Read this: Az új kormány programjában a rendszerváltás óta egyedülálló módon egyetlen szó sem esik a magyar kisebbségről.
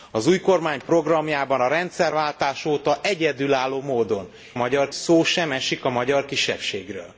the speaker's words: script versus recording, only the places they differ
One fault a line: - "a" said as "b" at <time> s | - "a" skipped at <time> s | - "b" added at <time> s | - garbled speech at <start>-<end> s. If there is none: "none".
- "egyetlen" said as "magyar" at 4.5 s